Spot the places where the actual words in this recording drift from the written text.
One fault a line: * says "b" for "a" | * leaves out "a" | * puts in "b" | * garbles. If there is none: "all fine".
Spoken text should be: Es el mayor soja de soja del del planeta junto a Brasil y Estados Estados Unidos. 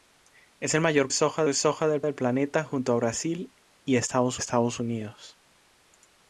all fine